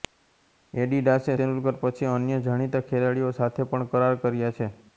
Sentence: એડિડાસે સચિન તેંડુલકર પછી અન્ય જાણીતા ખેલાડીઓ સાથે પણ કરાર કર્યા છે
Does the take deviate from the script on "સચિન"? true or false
true